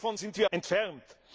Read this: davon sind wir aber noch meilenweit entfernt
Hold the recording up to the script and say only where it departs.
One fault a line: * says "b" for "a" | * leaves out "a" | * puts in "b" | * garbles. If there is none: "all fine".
* leaves out "aber noch meilenweit"